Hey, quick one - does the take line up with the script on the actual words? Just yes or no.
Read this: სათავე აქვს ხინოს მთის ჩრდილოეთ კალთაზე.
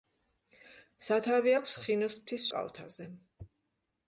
no